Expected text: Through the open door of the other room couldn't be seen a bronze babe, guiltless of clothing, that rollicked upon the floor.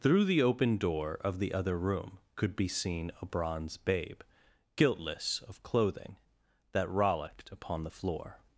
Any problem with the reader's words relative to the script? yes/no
yes